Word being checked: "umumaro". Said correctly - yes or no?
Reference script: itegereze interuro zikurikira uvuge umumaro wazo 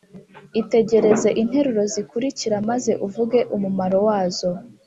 yes